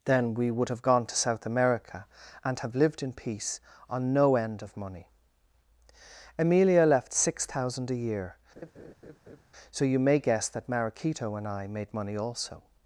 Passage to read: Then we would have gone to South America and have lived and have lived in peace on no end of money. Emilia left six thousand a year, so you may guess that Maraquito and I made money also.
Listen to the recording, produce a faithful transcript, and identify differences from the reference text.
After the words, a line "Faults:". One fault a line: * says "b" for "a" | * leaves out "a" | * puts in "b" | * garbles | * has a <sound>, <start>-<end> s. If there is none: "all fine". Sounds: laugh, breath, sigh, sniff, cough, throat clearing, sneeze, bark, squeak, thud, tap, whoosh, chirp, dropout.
Then we would have gone to South America and have lived in peace on no end of money. Emilia left six thousand a year, so you may guess that Maraquito and I made money also.
Faults:
* leaves out "and have lived"
* has a laugh, 8.6-9.4 s